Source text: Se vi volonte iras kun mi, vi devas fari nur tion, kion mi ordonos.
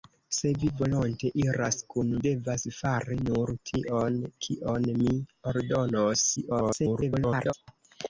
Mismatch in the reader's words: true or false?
true